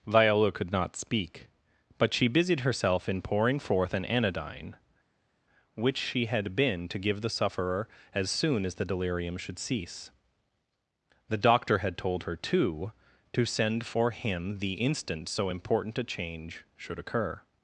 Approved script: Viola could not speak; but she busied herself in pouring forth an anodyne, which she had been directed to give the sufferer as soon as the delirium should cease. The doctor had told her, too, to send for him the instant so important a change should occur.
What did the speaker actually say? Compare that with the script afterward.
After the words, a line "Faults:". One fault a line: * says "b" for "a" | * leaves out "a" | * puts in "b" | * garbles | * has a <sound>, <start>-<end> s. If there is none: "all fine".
Viola could not speak; but she busied herself in pouring forth an anodyne, which she had been to give the sufferer as soon as the delirium should cease. The doctor had told her, too, to send for him the instant so important a change should occur.
Faults:
* leaves out "directed"